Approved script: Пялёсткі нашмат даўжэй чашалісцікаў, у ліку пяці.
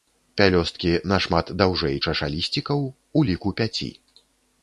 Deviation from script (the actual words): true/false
false